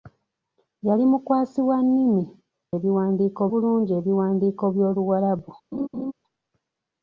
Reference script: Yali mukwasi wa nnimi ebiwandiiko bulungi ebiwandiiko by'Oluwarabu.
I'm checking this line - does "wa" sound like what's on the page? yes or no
yes